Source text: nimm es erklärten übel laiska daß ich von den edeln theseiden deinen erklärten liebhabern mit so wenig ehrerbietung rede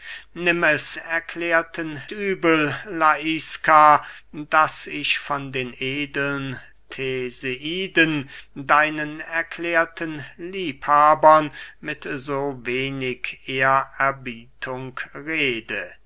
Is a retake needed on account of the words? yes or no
no